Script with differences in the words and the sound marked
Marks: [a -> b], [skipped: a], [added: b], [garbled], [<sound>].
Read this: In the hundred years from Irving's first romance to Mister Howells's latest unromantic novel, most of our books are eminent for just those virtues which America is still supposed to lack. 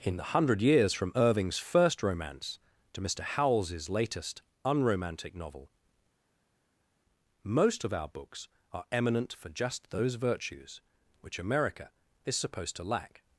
In the hundred years from Irving's first romance to Mister Howells's latest unromantic novel, most of our books are eminent for just those virtues which America is [skipped: still] supposed to lack.